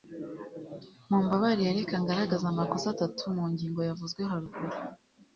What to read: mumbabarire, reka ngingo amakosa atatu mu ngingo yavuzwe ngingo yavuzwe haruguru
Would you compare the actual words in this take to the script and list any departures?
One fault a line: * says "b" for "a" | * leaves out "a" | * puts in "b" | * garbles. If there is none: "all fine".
* says "ngaragaze" for "ngingo"
* leaves out "ngingo yavuzwe"